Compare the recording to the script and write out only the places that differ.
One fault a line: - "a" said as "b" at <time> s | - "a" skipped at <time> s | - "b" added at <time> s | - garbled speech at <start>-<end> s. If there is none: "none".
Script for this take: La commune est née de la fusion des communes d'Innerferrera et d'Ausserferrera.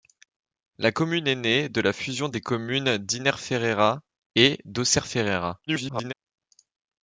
- garbled speech at 5.7-6.1 s